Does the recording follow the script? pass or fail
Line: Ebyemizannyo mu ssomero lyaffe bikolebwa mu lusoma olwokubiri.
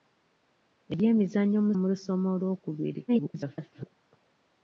fail